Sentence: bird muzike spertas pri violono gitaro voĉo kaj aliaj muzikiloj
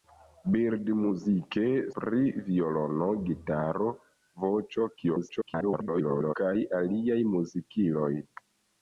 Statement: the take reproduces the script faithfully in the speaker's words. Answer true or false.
false